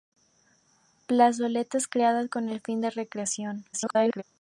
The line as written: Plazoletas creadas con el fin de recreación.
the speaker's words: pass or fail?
fail